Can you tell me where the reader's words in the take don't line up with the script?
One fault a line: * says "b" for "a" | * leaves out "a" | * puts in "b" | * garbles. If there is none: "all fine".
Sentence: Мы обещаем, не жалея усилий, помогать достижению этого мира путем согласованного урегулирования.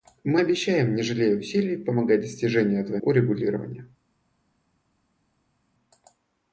* leaves out "мира путем согласованного"